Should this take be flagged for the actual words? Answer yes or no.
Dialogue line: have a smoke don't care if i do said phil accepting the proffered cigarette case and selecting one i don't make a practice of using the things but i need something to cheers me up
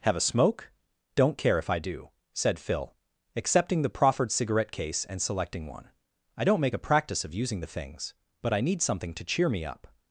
yes